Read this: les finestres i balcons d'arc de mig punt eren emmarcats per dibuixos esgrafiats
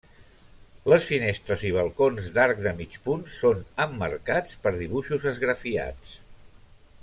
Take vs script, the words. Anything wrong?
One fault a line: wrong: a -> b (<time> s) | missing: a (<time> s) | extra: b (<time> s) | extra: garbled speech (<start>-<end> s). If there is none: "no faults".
wrong: eren -> són (3.4 s)